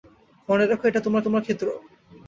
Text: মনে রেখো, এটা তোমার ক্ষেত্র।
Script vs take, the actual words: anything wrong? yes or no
yes